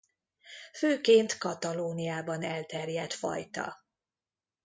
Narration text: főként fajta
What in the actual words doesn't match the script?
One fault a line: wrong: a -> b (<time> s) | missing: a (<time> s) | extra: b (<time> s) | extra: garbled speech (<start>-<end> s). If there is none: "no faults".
extra: katalóniában elterjedt (1.4 s)